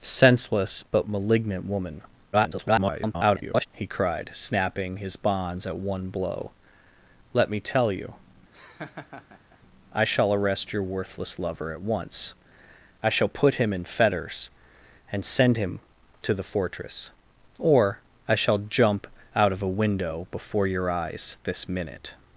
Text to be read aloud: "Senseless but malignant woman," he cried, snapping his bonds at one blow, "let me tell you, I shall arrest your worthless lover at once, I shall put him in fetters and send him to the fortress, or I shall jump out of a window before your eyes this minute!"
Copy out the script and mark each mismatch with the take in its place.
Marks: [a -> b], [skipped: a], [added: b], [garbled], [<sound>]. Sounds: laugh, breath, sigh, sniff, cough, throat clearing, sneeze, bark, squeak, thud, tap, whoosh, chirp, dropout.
"Senseless but malignant woman," [garbled] he cried, snapping his bonds at one blow, "let me tell you, [laugh] I shall arrest your worthless lover at once, I shall put him in fetters and send him to the fortress, or I shall jump out of a window before your eyes this minute!"